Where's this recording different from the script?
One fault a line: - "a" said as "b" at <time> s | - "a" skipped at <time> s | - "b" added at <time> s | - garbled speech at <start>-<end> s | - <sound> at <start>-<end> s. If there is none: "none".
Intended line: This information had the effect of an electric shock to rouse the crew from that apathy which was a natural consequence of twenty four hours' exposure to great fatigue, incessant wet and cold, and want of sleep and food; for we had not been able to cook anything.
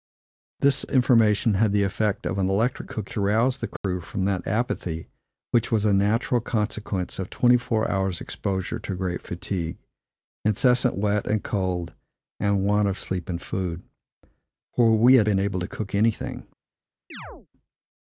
- "shock" said as "cook" at 2.8 s
- dropout at 3.8-3.8 s
- "not" skipped at 15.3 s
- chirp at 17.1-17.5 s